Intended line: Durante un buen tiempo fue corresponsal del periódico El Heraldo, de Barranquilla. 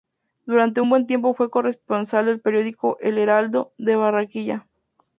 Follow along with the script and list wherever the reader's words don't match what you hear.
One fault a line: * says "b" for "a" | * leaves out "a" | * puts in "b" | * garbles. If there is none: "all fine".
all fine